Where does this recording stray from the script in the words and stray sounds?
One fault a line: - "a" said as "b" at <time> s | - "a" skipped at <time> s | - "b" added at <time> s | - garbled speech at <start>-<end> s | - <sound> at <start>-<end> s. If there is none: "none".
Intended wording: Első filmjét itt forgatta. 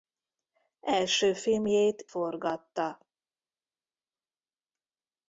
- "itt" skipped at 2.0 s